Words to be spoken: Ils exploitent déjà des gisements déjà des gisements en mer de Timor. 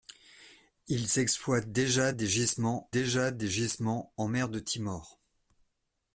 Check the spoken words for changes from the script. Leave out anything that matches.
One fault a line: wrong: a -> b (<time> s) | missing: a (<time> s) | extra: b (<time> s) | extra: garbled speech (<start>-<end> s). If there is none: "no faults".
no faults